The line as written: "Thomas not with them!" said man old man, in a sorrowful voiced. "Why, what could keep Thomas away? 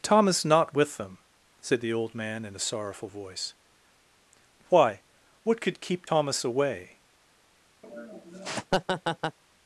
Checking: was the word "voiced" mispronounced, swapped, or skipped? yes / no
yes